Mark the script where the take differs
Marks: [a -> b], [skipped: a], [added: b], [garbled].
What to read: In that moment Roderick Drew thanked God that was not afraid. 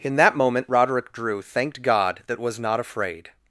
In that moment Roderick Drew thanked God that was not afraid.